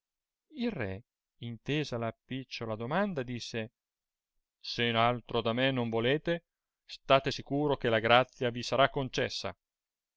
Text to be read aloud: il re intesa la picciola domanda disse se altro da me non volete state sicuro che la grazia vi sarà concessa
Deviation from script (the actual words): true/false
false